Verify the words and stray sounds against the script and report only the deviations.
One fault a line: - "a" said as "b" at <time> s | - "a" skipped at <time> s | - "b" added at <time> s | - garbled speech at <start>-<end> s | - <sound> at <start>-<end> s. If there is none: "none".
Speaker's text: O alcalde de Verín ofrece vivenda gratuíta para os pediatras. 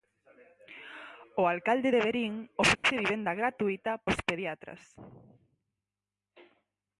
- dropout at 2.8-2.8 s
- "para" skipped at 3.9 s